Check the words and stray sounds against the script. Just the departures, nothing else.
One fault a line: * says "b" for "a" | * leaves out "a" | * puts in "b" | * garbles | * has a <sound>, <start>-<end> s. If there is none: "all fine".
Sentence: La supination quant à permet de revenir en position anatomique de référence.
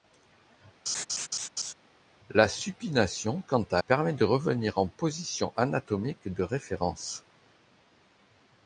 * has a laugh, 0.9-1.7 s